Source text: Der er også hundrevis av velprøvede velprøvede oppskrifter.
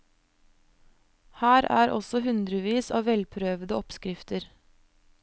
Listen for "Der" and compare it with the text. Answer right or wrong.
wrong